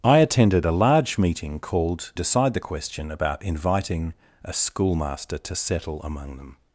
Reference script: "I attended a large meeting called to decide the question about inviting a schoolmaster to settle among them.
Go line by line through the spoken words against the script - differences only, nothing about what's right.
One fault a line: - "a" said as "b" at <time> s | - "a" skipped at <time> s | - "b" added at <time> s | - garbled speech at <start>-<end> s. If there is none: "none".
- "to" skipped at 2.1 s